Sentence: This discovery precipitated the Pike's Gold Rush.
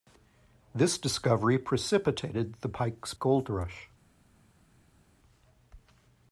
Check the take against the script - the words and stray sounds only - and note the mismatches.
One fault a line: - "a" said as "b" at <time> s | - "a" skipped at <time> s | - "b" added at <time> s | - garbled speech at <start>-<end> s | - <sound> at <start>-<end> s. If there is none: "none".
none